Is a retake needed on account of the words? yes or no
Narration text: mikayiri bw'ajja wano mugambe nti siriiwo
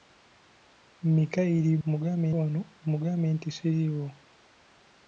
yes